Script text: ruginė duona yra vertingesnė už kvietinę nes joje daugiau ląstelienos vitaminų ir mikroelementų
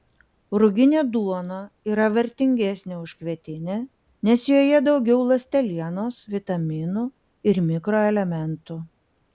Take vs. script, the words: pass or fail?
pass